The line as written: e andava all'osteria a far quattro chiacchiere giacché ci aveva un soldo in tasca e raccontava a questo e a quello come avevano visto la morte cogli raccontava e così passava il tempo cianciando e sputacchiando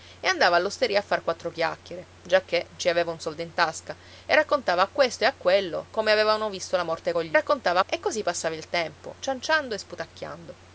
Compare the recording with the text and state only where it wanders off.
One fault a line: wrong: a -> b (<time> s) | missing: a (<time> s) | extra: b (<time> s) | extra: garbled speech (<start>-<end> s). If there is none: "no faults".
no faults